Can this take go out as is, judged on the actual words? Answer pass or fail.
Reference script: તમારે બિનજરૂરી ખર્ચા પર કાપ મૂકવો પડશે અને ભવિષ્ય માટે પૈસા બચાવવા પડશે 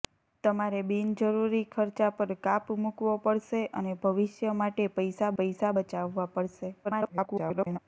fail